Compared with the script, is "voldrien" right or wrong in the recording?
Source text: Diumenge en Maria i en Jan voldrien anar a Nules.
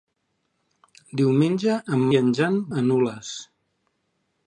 wrong